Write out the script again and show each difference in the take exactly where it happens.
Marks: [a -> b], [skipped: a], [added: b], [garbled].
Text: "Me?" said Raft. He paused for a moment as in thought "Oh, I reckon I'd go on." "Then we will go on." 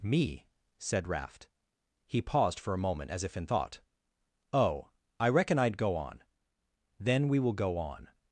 "Me?" said Raft. He paused for a moment as [added: if] in thought "Oh, I reckon I'd go on." "Then we will go on."